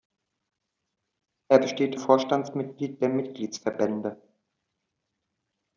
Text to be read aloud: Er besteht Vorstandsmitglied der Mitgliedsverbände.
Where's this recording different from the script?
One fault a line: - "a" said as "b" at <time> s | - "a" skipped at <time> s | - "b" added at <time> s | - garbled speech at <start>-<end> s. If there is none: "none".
none